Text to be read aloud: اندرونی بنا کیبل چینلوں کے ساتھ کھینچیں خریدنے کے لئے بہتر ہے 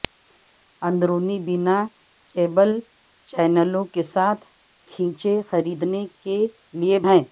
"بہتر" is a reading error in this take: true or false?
true